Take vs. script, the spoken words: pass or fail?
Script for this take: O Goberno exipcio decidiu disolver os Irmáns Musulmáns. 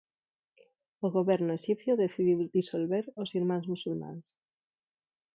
pass